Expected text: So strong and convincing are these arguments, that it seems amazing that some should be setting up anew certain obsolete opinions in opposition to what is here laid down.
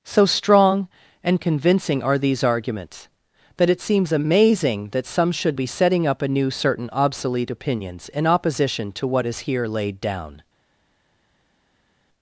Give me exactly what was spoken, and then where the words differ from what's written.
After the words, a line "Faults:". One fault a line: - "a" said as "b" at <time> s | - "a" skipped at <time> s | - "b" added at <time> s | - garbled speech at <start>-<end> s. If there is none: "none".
So strong and convincing are these arguments, that it seems amazing that some should be setting up anew certain obsolete opinions in opposition to what is here laid down.
Faults:
none